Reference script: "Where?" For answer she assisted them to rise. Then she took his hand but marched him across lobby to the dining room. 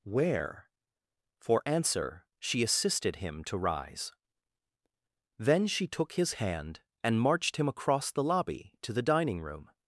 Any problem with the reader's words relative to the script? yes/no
yes